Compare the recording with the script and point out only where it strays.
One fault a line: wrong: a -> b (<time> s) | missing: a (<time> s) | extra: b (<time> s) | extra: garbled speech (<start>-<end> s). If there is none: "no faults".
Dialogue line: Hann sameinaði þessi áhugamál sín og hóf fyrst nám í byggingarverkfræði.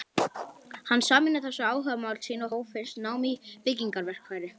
no faults